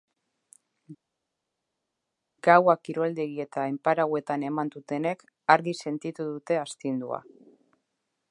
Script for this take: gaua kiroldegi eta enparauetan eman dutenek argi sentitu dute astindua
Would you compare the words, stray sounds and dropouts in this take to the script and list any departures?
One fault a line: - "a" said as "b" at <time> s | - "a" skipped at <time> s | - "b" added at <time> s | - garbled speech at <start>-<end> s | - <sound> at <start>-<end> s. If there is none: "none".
none